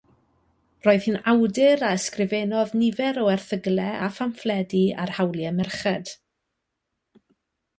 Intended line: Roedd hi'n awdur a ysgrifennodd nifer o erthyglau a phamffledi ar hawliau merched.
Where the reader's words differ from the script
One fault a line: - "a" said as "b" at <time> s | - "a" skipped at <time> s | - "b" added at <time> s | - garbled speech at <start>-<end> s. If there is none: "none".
none